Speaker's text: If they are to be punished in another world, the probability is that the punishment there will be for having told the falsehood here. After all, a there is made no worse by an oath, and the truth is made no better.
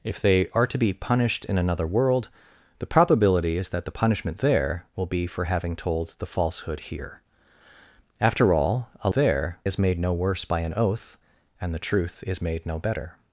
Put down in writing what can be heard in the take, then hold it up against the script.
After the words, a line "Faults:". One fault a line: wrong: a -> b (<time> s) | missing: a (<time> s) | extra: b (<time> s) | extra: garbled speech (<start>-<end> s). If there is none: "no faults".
If they are to be punished in another world, the probability is that the punishment there will be for having told the falsehood here. After all, a there is made no worse by an oath, and the truth is made no better.
Faults:
no faults